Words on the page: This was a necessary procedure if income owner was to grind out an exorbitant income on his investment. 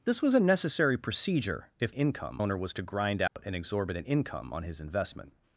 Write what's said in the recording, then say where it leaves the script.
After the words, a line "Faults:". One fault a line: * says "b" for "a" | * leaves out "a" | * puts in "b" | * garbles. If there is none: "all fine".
This was a necessary procedure if income owner was to grind out an exorbitant income on his investment.
Faults:
all fine